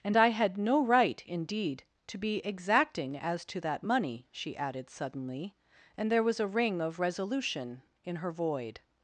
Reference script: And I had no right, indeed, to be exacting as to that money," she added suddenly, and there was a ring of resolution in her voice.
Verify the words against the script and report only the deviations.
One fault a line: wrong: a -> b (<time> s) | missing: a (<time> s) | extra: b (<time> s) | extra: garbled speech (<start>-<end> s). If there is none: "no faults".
wrong: voice -> void (8.3 s)